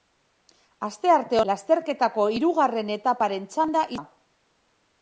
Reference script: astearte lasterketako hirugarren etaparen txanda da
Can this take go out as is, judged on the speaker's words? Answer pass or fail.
pass